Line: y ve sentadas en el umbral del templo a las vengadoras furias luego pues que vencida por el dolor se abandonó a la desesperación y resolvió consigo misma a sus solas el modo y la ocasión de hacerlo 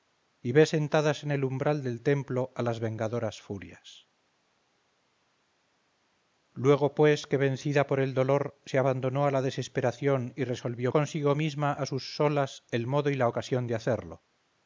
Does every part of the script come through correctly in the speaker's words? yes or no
yes